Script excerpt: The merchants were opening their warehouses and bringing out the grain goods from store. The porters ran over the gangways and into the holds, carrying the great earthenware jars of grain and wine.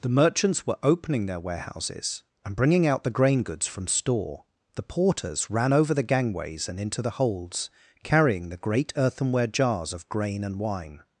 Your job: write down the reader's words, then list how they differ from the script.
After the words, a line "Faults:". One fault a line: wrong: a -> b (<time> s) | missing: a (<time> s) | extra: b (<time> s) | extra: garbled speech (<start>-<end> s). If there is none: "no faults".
The merchants were opening their warehouses and bringing out the grain goods from store. The porters ran over the gangways and into the holds, carrying the great earthenware jars of grain and wine.
Faults:
no faults